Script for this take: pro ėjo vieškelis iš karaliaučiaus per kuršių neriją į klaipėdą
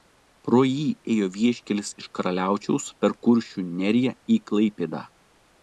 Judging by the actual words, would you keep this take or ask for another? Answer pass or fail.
fail